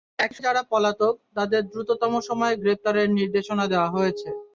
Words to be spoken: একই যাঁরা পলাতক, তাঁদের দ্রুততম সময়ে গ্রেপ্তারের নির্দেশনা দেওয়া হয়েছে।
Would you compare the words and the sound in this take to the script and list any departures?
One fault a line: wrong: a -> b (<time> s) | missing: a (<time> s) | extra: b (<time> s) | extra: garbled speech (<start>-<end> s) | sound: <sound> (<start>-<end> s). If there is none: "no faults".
no faults